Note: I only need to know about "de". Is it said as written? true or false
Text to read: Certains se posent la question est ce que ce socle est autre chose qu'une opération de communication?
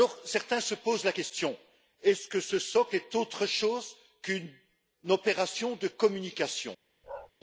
true